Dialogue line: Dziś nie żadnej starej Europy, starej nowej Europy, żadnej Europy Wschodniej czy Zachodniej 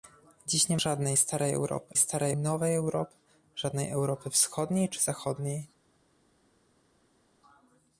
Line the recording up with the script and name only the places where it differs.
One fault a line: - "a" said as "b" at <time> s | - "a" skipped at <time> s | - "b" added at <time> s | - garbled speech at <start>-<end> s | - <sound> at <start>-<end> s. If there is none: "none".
none